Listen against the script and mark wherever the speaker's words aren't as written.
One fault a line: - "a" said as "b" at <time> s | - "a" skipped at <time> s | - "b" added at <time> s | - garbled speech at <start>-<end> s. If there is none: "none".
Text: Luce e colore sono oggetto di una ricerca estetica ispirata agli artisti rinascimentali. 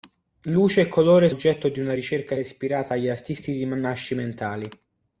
- "sono" skipped at 1.3 s
- "estetica" skipped at 2.3 s